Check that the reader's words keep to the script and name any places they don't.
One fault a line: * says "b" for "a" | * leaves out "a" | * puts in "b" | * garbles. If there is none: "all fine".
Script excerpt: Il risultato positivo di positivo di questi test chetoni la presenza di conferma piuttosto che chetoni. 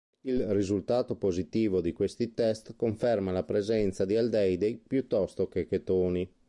* leaves out "positivo di"
* says "conferma" for "chetoni"
* says "aldeidi" for "conferma"